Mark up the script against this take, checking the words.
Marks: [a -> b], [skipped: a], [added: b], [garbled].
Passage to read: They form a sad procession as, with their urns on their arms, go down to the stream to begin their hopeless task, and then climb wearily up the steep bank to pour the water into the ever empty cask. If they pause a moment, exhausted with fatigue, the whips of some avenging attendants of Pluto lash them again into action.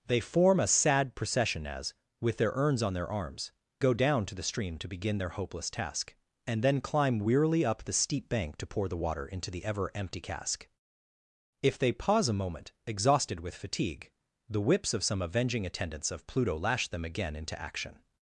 They form a sad procession as, with their urns on their arms, go down to the stream to begin their hopeless task, and then climb wearily up the steep bank to pour the water into the ever empty cask. If they pause a moment, exhausted with fatigue, the whips of some avenging attendants of Pluto lash them again into action.